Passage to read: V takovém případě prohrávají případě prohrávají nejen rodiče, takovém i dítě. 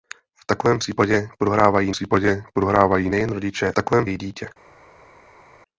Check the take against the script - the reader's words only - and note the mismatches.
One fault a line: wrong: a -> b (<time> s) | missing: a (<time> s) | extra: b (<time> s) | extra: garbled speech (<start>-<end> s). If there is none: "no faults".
no faults